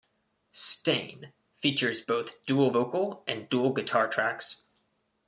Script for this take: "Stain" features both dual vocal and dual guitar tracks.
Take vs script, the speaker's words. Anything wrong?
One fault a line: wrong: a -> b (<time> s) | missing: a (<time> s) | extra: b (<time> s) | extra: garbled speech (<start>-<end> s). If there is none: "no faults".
no faults